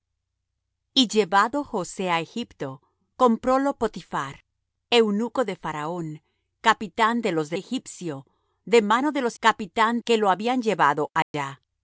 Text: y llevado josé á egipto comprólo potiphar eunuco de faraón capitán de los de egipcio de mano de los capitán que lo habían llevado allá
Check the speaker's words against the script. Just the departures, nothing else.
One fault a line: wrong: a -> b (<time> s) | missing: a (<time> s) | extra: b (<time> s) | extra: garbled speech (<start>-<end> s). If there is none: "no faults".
no faults